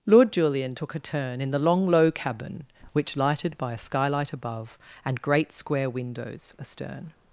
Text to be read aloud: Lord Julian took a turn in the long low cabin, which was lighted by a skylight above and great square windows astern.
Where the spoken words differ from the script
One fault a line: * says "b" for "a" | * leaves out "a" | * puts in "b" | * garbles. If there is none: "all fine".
* leaves out "was"